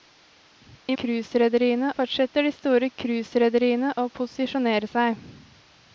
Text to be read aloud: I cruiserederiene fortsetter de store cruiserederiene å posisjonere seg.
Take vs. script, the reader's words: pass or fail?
pass